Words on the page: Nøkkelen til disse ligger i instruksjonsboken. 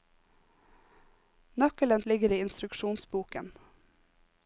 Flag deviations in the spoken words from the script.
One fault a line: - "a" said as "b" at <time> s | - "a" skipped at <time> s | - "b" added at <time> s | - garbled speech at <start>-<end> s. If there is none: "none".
- "til disse" skipped at 2.0 s